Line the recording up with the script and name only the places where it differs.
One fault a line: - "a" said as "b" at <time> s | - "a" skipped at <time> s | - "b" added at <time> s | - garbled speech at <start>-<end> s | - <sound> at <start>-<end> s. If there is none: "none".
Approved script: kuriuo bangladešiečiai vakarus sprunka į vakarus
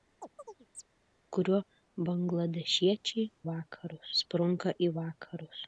- chirp at 0.2-0.9 s